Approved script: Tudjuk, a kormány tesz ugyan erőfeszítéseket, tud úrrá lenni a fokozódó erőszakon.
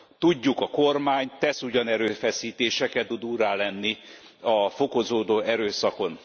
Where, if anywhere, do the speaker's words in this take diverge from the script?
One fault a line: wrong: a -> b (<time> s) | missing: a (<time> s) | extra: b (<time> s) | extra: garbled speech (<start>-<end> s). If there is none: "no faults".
no faults